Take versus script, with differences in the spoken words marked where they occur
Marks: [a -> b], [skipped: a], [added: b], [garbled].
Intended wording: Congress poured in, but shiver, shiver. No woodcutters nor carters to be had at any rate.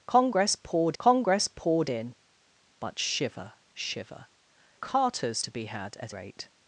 Congress poured [added: congress poured] in, but shiver, shiver. [skipped: No woodcutters nor] carters to be had at [skipped: any] rate.